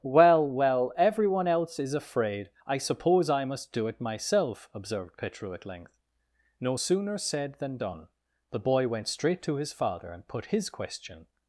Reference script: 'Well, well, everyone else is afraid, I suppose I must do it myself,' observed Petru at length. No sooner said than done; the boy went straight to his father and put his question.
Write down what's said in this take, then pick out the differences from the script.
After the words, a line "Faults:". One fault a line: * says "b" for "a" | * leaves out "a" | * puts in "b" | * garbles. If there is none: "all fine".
'Well, well, everyone else is afraid, I suppose I must do it myself,' observed Petru at length. No sooner said than done; the boy went straight to his father and put his question.
Faults:
all fine